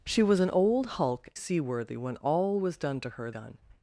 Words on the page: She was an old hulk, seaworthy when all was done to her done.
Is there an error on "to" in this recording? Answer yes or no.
no